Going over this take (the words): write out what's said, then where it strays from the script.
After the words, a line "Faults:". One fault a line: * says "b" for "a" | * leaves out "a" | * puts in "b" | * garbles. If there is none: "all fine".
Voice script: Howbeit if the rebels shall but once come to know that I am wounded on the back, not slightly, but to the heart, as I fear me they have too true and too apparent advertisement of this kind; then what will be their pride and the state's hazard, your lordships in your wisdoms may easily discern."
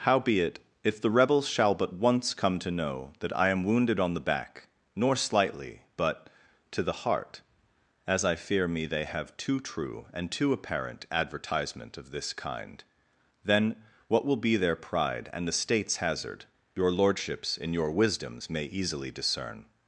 Howbeit if the rebels shall but once come to know that I am wounded on the back, nor slightly, but to the heart, as I fear me they have too true and too apparent advertisement of this kind; then what will be their pride and the state's hazard, your lordships in your wisdoms may easily discern."
Faults:
* says "nor" for "not"